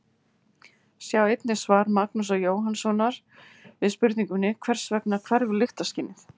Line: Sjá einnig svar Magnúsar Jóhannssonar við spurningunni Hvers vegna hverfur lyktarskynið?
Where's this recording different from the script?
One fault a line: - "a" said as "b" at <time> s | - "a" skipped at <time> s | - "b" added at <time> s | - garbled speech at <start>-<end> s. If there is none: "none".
none